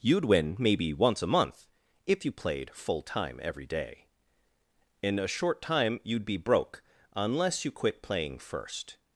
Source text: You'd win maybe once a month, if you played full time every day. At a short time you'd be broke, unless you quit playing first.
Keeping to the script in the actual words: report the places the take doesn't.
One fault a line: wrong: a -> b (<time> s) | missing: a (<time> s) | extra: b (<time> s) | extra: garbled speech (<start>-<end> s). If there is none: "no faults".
wrong: At -> In (5.0 s)